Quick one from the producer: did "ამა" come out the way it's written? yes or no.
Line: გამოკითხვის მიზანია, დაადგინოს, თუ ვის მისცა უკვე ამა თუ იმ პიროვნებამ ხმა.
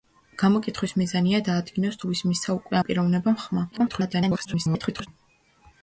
no